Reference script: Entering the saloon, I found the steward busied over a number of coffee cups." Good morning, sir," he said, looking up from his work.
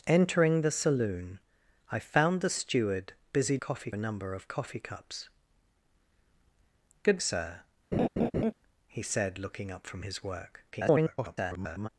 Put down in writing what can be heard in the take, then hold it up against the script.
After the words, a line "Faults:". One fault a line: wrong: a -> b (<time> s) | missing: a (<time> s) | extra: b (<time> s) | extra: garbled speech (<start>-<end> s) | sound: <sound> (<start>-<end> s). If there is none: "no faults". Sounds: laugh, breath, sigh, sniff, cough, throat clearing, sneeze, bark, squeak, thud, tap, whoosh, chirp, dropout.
Entering the saloon, I found the steward busied coffee a number of coffee cups." Good sir," he said, looking up from his work. [garbled]
Faults:
wrong: over -> coffee (3.6 s)
missing: morning (7.2 s)
sound: laugh (7.9-8.5 s)
extra: garbled speech (10.7-11.9 s)